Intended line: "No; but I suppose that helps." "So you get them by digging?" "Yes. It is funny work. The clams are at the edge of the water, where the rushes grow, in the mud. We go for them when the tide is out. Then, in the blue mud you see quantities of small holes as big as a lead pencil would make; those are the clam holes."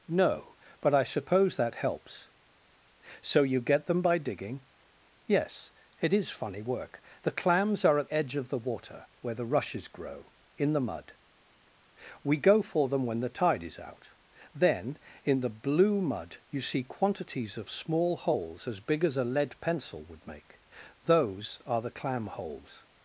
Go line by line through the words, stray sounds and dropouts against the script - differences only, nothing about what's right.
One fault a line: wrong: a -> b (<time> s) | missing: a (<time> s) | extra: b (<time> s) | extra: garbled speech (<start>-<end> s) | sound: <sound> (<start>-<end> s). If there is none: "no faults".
missing: the (8.1 s)